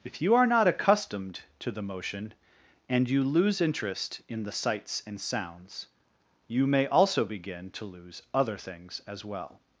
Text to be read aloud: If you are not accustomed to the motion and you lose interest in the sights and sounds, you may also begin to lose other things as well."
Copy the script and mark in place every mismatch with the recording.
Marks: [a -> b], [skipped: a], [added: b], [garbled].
If you are not accustomed to the motion and you lose interest in the sights and sounds, you may also begin to lose other things as well."